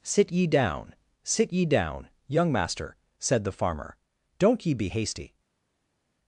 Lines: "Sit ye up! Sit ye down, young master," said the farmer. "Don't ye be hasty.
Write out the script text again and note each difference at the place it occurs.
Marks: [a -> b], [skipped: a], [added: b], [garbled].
"Sit ye [up! -> down] Sit ye down, young master," said the farmer. "Don't ye be hasty.